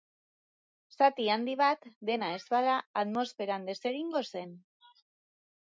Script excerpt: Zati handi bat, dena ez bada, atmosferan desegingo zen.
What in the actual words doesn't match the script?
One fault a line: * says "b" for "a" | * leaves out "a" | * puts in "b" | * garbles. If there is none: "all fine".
all fine